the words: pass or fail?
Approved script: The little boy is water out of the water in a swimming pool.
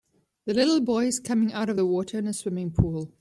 fail